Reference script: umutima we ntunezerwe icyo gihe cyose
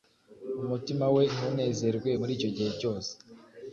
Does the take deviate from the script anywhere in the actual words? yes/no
yes